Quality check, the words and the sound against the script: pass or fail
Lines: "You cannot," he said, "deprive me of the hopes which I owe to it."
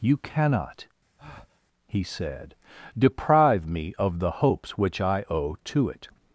fail